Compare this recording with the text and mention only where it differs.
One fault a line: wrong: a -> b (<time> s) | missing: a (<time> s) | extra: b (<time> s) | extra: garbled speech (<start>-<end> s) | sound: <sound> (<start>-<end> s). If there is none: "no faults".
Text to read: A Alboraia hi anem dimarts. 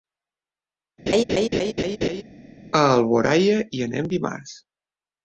sound: laugh (1.1-2.2 s)